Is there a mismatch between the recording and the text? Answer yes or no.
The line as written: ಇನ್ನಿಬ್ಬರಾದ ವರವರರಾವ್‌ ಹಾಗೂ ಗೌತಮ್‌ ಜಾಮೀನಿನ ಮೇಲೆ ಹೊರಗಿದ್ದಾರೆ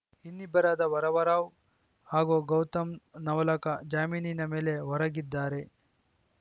yes